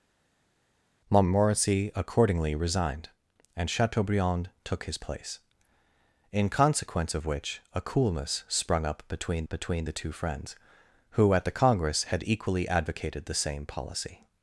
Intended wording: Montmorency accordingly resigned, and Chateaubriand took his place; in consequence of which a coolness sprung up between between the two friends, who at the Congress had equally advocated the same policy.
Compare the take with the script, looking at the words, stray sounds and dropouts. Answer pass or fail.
pass